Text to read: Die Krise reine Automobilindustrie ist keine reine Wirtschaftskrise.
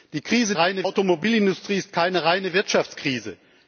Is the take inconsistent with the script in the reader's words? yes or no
no